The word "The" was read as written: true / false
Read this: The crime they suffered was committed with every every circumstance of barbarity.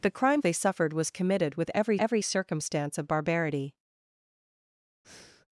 true